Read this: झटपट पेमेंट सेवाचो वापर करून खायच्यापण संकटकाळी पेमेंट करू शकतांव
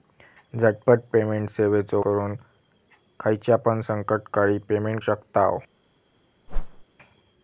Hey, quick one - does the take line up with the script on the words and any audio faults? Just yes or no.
no